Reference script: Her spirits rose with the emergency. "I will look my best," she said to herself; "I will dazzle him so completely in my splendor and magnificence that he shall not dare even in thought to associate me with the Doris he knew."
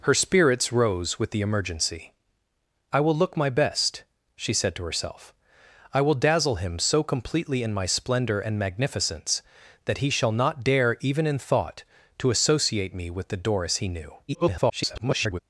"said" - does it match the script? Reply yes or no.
yes